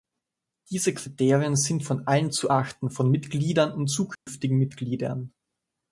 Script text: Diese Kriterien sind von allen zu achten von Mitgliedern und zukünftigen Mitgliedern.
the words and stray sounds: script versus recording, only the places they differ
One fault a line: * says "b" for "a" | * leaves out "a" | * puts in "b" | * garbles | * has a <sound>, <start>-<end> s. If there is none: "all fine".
* has a dropout, 4.2-4.3 s